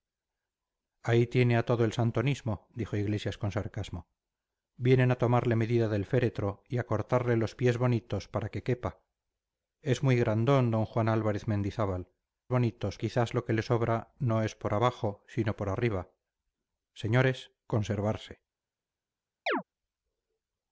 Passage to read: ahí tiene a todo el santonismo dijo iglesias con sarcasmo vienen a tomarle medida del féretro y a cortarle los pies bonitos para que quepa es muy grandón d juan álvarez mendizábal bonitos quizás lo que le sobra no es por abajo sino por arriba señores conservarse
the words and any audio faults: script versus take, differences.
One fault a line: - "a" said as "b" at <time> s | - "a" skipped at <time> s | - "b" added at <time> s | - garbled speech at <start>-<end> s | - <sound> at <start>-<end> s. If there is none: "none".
- chirp at 19.5-19.6 s